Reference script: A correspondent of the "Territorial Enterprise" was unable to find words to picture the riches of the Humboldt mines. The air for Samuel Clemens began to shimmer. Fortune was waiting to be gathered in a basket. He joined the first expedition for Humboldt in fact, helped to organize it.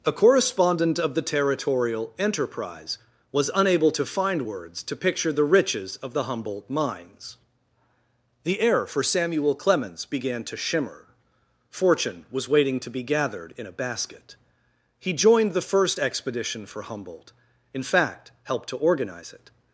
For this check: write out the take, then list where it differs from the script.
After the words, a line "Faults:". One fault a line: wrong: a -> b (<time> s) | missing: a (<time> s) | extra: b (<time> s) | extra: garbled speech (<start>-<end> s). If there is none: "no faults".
A correspondent of the "Territorial Enterprise" was unable to find words to picture the riches of the Humboldt mines. The air for Samuel Clemens began to shimmer. Fortune was waiting to be gathered in a basket. He joined the first expedition for Humboldt in fact, helped to organize it.
Faults:
no faults